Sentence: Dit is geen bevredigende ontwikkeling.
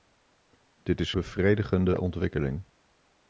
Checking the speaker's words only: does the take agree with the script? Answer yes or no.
no